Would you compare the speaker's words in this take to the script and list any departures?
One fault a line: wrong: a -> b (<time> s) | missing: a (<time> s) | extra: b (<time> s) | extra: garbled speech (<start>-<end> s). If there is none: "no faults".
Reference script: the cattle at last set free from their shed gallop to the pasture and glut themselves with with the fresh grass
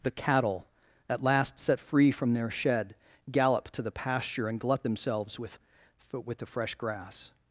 no faults